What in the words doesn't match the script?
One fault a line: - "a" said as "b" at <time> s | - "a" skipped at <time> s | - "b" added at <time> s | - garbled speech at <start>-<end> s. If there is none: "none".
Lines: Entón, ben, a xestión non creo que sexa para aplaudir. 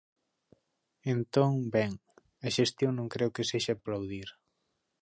- "para" skipped at 3.7 s